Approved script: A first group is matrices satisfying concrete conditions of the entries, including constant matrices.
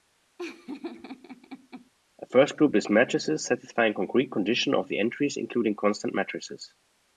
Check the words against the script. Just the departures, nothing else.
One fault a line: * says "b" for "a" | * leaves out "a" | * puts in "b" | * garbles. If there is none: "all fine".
all fine